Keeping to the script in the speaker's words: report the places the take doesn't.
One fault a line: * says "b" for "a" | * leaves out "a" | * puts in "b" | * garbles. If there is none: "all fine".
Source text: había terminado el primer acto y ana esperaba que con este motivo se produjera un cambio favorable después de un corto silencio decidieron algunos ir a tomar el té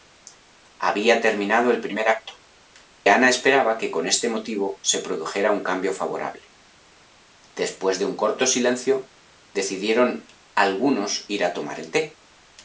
* leaves out "y"